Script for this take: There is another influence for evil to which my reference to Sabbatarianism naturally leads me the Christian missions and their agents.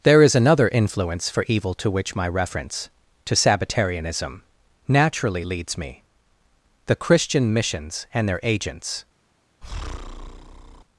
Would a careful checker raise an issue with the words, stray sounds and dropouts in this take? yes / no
yes